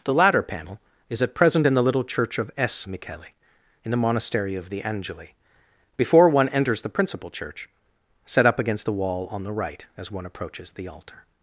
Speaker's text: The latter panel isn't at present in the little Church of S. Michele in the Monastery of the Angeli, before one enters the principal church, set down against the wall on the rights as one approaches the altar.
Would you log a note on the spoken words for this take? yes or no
yes